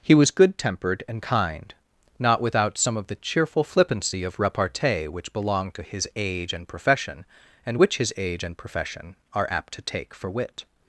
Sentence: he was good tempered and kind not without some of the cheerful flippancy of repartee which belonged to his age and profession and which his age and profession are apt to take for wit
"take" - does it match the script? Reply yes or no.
yes